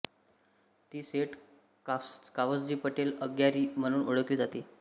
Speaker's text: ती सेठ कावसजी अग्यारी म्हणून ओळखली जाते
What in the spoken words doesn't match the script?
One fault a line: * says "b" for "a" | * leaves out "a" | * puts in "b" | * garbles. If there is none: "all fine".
* puts in "पटेल"